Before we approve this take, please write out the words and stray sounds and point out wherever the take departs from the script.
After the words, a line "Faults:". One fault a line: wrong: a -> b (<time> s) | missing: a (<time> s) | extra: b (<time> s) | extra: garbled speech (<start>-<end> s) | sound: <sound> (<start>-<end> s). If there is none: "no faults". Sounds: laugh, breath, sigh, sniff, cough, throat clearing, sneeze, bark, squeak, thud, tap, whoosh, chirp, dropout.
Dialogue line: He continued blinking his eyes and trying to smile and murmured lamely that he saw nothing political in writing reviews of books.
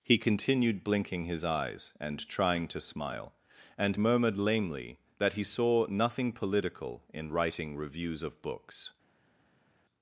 He continued blinking his eyes and trying to smile and murmured lamely that he saw nothing political in writing reviews of books.
Faults:
no faults